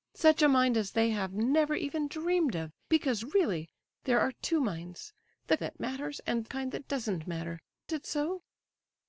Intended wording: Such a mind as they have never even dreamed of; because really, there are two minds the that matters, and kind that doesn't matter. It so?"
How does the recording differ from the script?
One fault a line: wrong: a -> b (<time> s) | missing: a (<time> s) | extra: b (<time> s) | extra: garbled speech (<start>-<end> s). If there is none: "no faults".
no faults